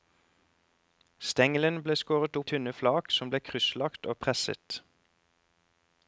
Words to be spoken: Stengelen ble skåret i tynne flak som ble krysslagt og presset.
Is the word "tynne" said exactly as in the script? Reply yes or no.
yes